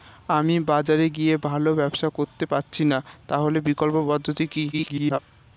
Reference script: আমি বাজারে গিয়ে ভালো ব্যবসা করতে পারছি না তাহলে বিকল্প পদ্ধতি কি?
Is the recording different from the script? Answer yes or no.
yes